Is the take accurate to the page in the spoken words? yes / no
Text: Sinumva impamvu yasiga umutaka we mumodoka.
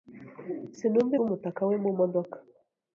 no